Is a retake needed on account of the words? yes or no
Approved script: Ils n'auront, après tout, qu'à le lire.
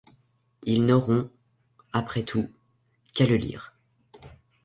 no